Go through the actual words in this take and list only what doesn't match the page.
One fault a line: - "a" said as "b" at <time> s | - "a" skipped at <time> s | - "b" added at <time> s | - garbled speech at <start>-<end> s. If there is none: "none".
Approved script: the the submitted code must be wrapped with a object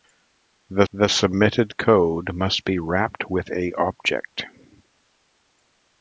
none